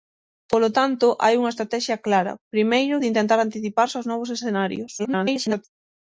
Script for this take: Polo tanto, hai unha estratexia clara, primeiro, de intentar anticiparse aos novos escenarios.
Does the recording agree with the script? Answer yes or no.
no